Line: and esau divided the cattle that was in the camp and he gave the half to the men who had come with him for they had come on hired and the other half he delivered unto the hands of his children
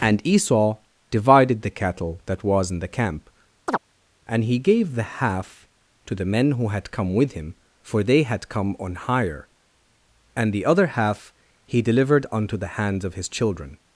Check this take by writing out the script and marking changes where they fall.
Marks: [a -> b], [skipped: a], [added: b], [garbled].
and esau divided the cattle that was in the camp and he gave the half to the men who had come with him for they had come on [hired -> hire] and the other half he delivered unto the hands of his children